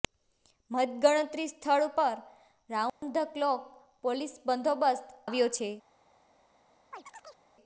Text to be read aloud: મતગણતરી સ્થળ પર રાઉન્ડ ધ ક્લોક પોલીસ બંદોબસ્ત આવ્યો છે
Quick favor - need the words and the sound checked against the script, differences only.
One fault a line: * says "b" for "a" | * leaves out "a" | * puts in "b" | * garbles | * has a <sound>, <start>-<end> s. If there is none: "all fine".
* has a dropout, 2.9-3.0 s
* has a chirp, 6.9-7.4 s